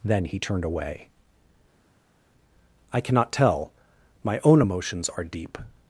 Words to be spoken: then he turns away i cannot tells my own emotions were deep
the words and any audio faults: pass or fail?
fail